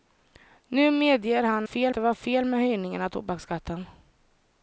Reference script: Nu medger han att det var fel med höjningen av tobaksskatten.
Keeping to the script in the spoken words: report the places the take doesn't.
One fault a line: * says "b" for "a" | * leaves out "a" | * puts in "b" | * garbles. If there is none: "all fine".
* says "fel" for "att"